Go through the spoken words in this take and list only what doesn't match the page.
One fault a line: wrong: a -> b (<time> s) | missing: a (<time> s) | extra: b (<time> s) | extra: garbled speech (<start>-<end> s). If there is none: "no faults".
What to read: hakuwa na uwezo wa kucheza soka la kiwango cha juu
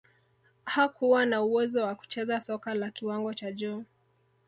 no faults